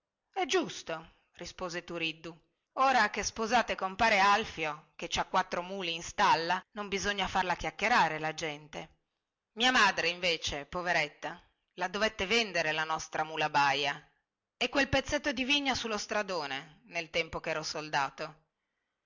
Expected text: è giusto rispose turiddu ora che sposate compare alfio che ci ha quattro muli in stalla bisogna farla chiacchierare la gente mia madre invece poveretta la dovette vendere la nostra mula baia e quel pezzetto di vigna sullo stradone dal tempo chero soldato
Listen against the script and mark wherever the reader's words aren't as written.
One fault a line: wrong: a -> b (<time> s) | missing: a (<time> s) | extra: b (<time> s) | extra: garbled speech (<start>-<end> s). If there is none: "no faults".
extra: non (6.7 s)
wrong: dal -> nel (16.8 s)